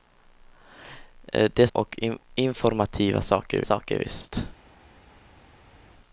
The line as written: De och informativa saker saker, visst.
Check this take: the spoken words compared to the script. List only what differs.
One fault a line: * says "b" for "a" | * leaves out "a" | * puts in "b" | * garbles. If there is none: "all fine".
all fine